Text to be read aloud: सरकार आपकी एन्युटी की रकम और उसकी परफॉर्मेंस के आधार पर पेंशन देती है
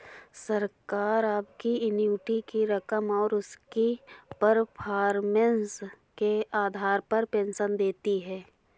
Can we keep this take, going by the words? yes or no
yes